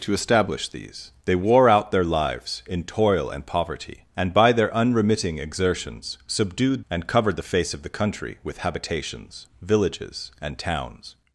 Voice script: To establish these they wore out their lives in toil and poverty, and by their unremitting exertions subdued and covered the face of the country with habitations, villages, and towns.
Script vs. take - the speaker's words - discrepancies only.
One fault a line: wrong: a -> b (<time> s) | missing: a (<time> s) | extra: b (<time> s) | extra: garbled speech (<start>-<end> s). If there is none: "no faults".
no faults